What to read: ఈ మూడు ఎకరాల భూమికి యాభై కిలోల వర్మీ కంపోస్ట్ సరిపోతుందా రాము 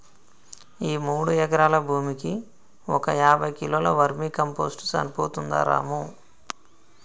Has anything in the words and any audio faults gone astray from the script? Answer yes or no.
yes